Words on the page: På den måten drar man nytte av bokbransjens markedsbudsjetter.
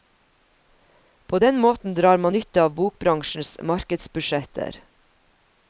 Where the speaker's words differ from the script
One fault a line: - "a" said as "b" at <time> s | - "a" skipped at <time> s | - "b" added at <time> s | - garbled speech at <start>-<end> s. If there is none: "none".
none